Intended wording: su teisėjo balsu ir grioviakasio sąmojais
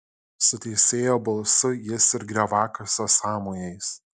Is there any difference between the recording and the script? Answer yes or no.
yes